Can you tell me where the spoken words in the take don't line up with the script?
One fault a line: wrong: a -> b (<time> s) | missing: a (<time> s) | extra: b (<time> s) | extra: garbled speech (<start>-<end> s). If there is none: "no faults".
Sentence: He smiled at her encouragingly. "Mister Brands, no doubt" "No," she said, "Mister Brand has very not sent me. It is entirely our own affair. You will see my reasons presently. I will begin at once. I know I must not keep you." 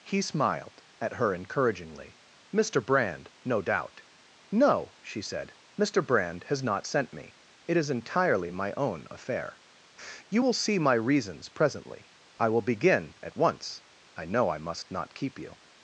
wrong: Brands -> Brand (2.8 s)
missing: very (6.6 s)
wrong: our -> my (8.5 s)